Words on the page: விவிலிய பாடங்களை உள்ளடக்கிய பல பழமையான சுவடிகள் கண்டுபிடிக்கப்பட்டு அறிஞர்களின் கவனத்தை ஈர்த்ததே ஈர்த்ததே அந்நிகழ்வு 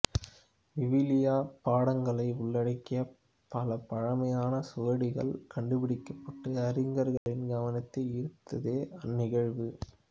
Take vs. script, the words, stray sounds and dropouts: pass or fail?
fail